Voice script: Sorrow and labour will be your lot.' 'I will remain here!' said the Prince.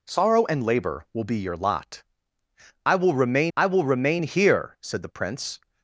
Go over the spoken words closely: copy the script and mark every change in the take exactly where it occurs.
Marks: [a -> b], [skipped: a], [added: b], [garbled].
Sorrow and labour will be your lot.' 'I will remain [added: I will remain] here!' said the Prince.